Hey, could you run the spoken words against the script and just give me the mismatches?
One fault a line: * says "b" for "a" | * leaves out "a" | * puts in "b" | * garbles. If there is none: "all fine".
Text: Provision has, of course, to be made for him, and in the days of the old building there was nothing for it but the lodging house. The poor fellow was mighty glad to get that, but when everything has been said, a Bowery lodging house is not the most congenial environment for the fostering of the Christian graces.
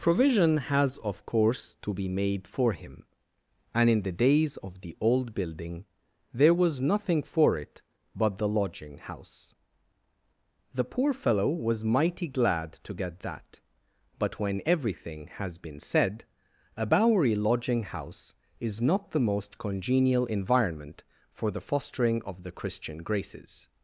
all fine